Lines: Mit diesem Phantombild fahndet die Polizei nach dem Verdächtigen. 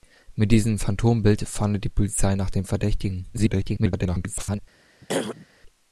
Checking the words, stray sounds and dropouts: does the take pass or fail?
fail